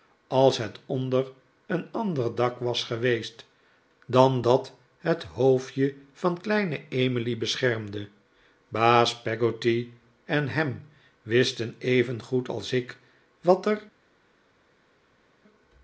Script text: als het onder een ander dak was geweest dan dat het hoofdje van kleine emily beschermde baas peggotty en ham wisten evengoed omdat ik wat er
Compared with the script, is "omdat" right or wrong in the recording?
wrong